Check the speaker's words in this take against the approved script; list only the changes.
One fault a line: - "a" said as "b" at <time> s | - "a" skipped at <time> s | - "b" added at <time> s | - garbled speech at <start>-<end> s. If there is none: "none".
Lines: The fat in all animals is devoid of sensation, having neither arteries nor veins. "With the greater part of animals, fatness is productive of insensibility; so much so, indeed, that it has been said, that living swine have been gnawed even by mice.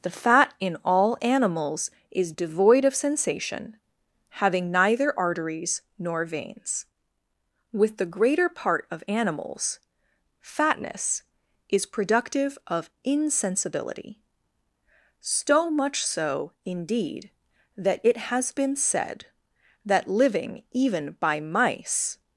- "swine have been gnawed" skipped at 20.6 s